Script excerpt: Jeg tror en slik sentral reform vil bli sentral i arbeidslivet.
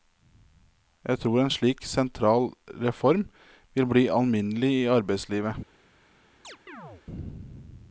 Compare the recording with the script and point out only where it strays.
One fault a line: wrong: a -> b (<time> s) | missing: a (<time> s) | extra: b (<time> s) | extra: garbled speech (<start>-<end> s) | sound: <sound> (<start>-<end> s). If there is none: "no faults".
wrong: sentral -> alminnelig (4.1 s)
sound: chirp (6.4-7.1 s)